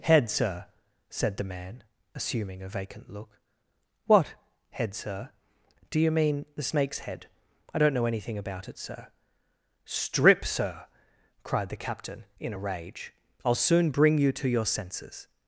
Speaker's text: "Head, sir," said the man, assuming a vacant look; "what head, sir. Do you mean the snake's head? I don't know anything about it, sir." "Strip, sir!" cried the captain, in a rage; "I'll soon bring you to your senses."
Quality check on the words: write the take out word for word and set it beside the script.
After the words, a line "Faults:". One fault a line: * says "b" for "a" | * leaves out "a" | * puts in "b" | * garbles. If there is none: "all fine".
"Head, sir," said the man, assuming a vacant look; "what head, sir. Do you mean the snake's head? I don't know anything about it, sir." "Strip, sir!" cried the captain, in a rage; "I'll soon bring you to your senses."
Faults:
all fine